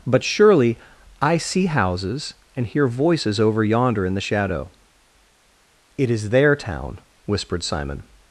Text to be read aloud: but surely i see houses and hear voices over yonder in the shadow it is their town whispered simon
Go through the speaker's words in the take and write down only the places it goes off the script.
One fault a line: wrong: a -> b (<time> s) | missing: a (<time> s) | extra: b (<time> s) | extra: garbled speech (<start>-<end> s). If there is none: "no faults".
no faults